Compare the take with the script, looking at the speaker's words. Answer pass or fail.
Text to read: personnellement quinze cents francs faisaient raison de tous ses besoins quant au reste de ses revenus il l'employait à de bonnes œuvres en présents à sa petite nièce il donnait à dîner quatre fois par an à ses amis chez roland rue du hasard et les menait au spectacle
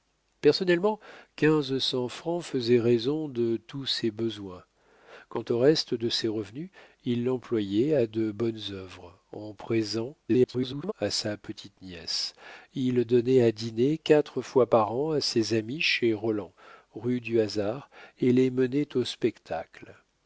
fail